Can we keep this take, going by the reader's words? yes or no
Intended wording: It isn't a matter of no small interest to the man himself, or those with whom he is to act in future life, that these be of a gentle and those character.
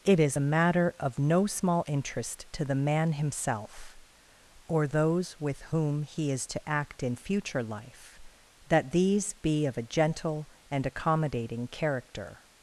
no